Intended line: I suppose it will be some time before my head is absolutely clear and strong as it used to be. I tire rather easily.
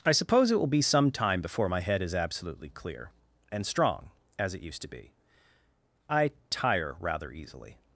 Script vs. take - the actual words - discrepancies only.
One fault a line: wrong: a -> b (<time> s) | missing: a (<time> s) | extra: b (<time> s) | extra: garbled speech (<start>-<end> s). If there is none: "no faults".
no faults